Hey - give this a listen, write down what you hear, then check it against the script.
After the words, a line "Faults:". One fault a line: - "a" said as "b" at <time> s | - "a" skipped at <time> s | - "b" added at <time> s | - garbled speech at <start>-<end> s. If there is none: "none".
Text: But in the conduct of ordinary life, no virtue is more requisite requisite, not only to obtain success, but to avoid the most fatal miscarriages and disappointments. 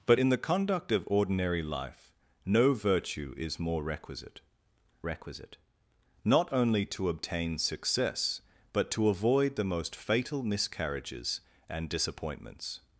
But in the conduct of ordinary life, no virtue is more requisite requisite, not only to obtain success, but to avoid the most fatal miscarriages and disappointments.
Faults:
none